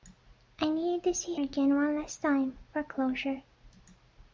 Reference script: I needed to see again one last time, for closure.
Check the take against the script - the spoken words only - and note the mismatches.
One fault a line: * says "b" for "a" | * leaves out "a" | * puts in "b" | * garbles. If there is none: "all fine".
all fine